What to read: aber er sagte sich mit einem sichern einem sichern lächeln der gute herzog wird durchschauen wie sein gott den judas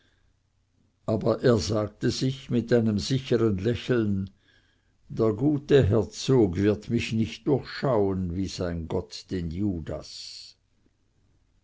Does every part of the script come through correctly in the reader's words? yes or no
no